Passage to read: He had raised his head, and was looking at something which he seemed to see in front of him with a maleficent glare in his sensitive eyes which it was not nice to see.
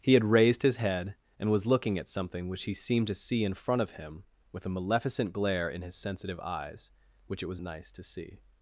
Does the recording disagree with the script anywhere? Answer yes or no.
yes